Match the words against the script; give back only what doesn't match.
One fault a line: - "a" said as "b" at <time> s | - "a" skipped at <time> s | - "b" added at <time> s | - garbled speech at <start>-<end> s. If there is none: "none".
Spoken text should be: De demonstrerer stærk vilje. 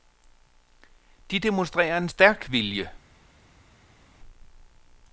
- "en" added at 2.0 s